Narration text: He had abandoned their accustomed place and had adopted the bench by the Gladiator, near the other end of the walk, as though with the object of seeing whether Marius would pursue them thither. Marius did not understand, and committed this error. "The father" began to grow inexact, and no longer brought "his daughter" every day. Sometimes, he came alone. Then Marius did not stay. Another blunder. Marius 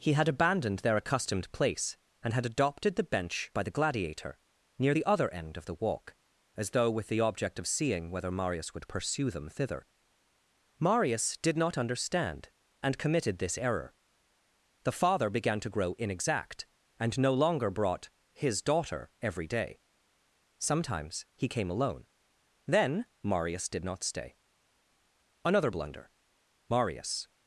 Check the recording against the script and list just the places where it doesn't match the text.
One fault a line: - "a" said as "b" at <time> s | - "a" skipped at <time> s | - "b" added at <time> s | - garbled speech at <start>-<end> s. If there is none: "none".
none